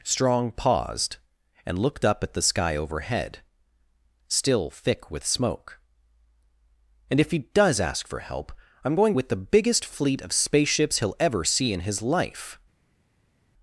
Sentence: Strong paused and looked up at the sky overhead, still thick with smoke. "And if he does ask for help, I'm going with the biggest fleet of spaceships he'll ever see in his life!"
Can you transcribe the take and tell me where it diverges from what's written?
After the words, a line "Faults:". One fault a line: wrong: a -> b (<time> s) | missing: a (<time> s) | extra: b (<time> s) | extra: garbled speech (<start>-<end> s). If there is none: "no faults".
Strong paused and looked up at the sky overhead, still thick with smoke. "And if he does ask for help, I'm going with the biggest fleet of spaceships he'll ever see in his life!"
Faults:
no faults